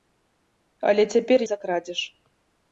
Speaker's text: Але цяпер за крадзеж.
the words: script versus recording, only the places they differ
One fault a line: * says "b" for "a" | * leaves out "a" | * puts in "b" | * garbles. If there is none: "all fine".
all fine